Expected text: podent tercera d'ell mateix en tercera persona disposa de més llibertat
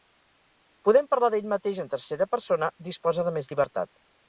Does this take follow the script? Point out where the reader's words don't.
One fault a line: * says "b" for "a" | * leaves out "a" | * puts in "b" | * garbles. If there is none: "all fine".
* says "parlar" for "tercera"